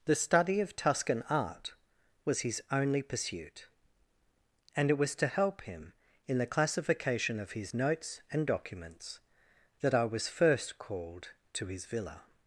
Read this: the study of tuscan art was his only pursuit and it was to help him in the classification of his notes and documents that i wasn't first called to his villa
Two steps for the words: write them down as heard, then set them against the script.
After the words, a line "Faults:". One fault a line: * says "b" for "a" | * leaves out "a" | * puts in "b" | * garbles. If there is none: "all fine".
the study of tuscan art was his only pursuit and it was to help him in the classification of his notes and documents that i was first called to his villa
Faults:
* says "was" for "wasn't"